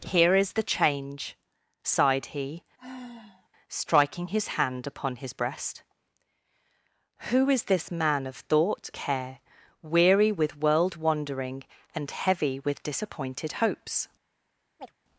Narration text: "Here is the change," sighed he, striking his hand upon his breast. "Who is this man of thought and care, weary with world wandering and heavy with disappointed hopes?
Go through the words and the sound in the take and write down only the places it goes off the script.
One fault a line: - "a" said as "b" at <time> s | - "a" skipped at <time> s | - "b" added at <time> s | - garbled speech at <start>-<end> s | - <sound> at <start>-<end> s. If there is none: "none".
- sigh at 2.8-3.5 s
- "and" skipped at 8.9 s
- chirp at 14.8-15.0 s